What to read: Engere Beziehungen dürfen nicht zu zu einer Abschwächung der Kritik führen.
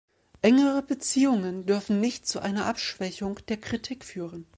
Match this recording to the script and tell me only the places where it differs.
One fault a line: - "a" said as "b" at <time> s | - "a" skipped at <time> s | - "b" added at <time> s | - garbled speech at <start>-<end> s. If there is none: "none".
- "zu" skipped at 2.4 s